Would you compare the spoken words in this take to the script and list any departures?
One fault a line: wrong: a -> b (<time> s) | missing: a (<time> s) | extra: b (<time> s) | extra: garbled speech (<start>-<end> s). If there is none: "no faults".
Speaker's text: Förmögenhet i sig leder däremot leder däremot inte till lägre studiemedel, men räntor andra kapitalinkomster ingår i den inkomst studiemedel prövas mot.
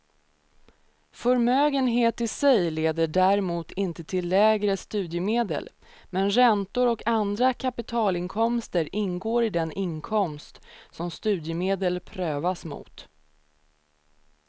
missing: leder däremot (3.7 s)
extra: och (6.9 s)
extra: som (10.9 s)